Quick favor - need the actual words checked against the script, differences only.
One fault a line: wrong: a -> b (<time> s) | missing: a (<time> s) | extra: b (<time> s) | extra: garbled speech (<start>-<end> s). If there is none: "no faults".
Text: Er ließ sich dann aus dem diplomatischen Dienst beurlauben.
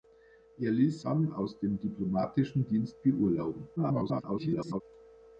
missing: sich (1.0 s)
extra: garbled speech (3.8-4.8 s)